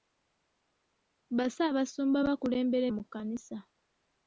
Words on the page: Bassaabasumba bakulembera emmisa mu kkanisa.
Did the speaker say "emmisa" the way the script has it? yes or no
no